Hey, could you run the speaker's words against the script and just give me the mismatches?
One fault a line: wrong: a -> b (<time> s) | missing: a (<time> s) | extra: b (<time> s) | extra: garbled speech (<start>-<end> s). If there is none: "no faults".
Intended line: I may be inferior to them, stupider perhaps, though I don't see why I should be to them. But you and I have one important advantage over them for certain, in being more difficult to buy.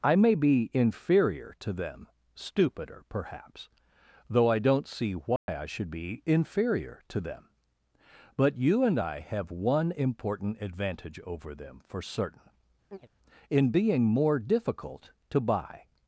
extra: inferior (6.2 s)